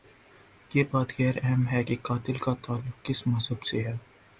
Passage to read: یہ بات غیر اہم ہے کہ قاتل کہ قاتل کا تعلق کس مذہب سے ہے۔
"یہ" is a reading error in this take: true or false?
false